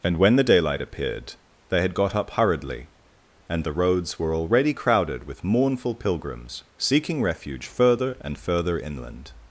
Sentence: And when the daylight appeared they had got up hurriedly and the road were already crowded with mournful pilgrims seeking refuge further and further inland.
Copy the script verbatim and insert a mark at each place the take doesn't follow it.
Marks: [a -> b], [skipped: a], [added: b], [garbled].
And when the daylight appeared they had got up hurriedly and the [road -> roads] were already crowded with mournful pilgrims seeking refuge further and further inland.